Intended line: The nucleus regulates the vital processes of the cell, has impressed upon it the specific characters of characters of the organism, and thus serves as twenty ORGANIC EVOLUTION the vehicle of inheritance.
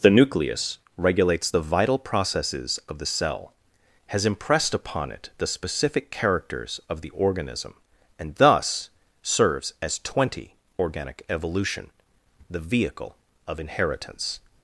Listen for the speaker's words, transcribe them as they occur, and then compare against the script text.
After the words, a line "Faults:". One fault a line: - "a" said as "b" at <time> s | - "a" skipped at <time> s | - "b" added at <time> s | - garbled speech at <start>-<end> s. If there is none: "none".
The nucleus regulates the vital processes of the cell, has impressed upon it the specific characters of the organism, and thus serves as twenty ORGANIC EVOLUTION the vehicle of inheritance.
Faults:
- "characters of" skipped at 7.0 s